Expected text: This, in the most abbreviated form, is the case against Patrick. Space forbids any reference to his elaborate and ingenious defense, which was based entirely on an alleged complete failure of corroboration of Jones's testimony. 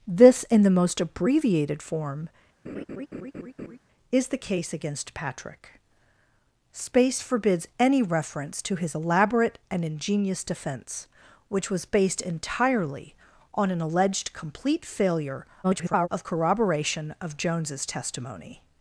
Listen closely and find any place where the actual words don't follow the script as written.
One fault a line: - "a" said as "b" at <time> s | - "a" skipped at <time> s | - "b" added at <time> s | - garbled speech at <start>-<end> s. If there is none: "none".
- garbled speech at 15.6-16.1 s